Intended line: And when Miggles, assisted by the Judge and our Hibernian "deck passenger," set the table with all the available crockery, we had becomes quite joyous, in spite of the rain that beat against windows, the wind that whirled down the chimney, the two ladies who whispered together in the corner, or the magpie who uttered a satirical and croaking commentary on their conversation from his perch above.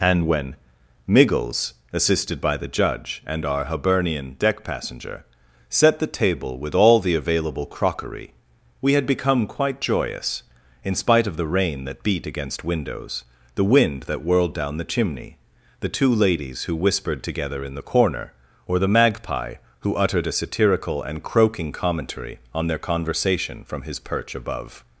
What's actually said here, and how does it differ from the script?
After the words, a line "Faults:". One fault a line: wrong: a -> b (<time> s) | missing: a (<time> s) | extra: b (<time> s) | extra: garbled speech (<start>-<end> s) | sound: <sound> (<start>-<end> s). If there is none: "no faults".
And when Miggles, assisted by the Judge and our Hibernian "deck passenger," set the table with all the available crockery, we had become quite joyous, in spite of the rain that beat against windows, the wind that whirled down the chimney, the two ladies who whispered together in the corner, or the magpie who uttered a satirical and croaking commentary on their conversation from his perch above.
Faults:
wrong: becomes -> become (9.1 s)